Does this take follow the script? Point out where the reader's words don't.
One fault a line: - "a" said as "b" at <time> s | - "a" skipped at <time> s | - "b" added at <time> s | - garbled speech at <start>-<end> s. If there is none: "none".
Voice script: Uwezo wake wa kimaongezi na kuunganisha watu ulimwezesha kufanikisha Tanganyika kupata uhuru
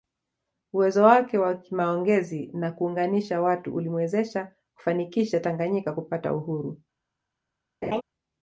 none